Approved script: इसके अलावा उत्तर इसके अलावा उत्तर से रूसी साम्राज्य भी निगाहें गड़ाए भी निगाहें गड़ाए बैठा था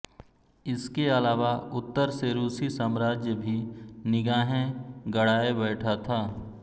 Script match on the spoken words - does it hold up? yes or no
no